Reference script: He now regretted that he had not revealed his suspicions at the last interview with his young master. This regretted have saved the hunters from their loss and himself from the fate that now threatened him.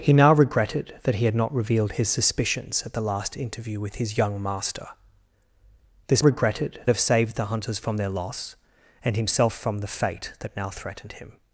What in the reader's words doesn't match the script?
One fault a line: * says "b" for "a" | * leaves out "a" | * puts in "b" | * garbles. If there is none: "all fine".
all fine